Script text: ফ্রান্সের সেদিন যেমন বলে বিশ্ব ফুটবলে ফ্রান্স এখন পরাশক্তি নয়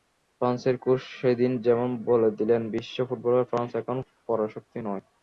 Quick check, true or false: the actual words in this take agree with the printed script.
false